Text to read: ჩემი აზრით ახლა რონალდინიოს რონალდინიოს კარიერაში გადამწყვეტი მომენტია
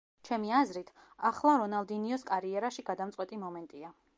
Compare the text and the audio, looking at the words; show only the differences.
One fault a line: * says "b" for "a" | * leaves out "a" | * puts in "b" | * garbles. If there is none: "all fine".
* leaves out "რონალდინიოს"